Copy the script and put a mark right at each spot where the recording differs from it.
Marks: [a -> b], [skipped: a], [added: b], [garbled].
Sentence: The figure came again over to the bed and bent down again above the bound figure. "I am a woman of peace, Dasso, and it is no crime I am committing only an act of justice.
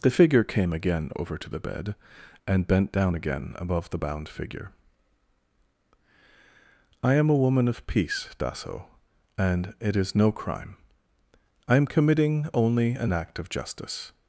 The figure came again over to the bed and bent down again above the bound figure. "I am a woman of peace, Dasso, and it is no crime I am committing only an act of justice.